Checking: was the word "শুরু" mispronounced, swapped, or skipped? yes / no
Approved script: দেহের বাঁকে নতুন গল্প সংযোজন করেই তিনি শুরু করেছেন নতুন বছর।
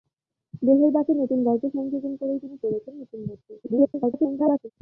yes